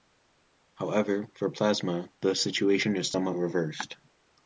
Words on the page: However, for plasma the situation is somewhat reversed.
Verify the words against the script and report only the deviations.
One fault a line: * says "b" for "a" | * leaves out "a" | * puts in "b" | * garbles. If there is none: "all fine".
all fine